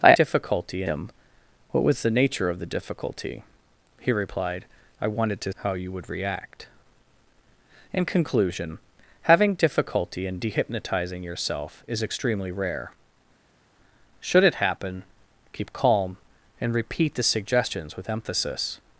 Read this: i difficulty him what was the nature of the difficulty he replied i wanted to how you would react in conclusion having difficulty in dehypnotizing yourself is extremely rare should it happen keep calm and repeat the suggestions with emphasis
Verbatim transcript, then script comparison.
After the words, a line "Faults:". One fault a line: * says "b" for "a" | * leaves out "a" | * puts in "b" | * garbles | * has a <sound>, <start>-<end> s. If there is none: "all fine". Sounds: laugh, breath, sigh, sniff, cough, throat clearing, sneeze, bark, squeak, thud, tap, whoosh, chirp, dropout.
i difficulty him what was the nature of the difficulty he replied i wanted to how you would react in conclusion having difficulty in dehypnotizing yourself is extremely rare should it happen keep calm and repeat the suggestions with emphasis
Faults:
all fine